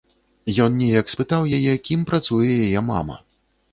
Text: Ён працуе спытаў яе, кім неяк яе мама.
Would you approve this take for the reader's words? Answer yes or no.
no